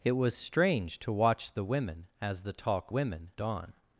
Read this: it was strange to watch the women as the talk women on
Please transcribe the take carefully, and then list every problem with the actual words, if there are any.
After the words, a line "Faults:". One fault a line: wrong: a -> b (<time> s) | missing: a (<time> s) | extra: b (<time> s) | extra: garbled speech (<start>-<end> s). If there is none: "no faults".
it was strange to watch the women as the talk women on
Faults:
no faults